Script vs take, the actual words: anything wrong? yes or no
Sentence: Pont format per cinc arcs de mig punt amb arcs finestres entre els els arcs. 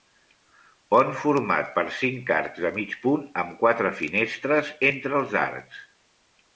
yes